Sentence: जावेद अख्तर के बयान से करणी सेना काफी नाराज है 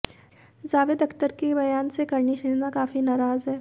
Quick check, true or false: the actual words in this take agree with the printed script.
true